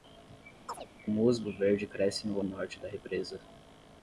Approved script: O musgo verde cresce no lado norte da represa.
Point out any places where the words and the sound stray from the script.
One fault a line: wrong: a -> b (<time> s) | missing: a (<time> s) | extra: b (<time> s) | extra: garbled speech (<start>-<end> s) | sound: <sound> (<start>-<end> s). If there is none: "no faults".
sound: chirp (0.7-0.9 s)
missing: lado (2.4 s)